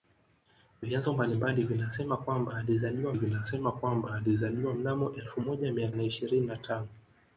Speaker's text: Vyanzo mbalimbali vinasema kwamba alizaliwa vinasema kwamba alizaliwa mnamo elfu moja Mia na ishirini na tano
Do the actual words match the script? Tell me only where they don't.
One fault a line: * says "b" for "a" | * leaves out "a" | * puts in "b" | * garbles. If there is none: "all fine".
all fine